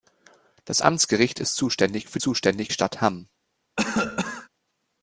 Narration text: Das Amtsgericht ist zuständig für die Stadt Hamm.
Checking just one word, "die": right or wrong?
wrong